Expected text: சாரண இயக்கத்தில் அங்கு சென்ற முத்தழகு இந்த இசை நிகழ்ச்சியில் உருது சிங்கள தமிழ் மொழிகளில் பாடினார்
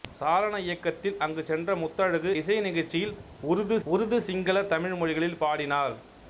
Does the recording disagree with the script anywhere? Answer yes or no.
yes